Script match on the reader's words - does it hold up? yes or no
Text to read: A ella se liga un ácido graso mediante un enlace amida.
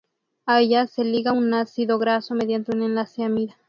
yes